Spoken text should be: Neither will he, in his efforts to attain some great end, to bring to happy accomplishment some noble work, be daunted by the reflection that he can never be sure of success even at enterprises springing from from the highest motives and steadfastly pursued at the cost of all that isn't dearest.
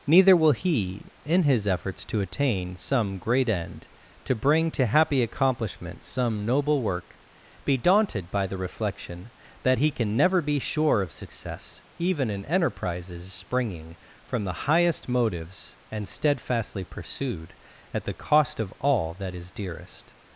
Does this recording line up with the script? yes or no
no